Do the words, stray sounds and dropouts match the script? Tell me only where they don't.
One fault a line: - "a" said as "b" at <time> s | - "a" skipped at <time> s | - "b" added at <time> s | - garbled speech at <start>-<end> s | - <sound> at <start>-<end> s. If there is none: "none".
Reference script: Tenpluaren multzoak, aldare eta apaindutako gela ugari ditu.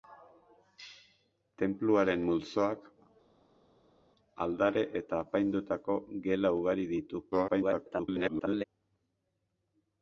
- garbled speech at 7.3-8.6 s